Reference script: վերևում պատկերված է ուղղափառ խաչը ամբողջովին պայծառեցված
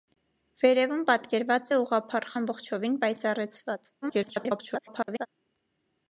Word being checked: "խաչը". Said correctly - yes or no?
no